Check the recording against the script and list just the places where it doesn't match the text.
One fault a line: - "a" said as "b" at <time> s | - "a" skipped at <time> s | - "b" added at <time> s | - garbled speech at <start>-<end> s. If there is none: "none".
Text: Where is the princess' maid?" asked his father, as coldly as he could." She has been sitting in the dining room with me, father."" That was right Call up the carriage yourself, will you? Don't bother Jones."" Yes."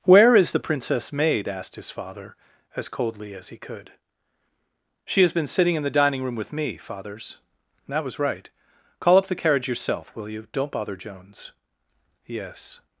- "father" said as "fathers" at 6.8 s